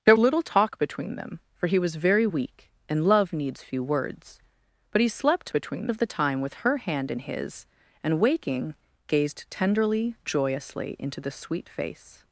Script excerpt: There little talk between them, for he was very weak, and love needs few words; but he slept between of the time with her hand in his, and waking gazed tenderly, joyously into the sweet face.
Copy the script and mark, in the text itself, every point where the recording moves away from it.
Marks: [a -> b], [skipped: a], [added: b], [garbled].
There little talk between them, for he was very weak, and love needs few words; but he slept between of the time with her hand in his, and waking gazed tenderly, joyously into the sweet face.